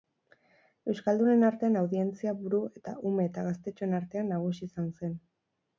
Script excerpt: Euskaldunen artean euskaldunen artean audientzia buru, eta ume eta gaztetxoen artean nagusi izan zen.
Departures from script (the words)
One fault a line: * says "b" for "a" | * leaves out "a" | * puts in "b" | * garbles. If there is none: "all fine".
* leaves out "euskaldunen artean"